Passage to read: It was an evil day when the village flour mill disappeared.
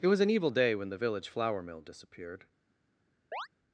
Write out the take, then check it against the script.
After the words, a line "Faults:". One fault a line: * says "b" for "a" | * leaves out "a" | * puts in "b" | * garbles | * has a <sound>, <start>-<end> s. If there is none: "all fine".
It was an evil day when the village flour mill disappeared.
Faults:
* has a chirp, 3.3-3.5 s